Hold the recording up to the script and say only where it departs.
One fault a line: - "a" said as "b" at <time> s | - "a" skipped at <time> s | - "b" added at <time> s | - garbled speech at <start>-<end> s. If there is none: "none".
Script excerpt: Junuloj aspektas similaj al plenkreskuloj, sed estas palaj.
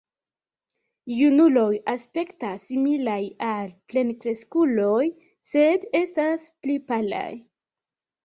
- "pli" added at 6.6 s